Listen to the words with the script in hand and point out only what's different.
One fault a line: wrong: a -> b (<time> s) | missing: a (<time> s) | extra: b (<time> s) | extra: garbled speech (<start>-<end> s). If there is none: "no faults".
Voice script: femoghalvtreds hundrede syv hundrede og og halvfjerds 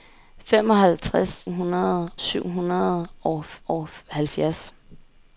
no faults